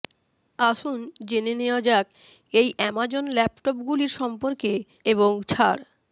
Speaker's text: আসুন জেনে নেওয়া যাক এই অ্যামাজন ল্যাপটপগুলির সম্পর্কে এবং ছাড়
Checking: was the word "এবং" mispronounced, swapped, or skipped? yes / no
no